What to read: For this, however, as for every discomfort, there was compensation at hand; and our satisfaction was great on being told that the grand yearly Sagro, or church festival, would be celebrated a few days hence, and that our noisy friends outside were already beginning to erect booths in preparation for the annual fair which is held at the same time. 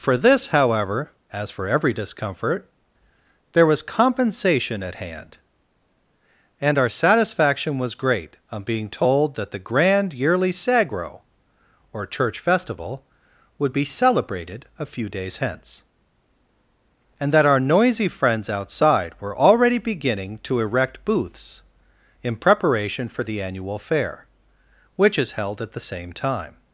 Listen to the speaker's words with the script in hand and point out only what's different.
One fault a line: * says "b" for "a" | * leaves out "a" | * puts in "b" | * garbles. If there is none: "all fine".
all fine